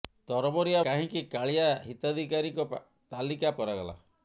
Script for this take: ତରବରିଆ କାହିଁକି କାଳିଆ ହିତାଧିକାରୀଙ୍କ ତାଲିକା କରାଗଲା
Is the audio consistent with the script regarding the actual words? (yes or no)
yes